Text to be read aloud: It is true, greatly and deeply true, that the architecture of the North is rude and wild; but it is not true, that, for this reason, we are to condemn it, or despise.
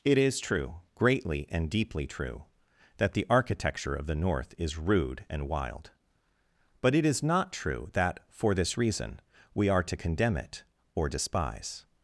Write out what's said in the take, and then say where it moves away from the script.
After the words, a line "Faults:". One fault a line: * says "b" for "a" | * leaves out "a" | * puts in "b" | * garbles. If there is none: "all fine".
It is true, greatly and deeply true, that the architecture of the North is rude and wild; but it is not true, that, for this reason, we are to condemn it, or despise.
Faults:
all fine